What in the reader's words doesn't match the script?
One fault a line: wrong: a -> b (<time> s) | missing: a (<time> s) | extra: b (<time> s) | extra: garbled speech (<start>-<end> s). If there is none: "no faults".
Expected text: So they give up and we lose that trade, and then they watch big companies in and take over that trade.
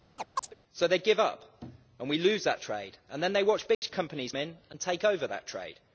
no faults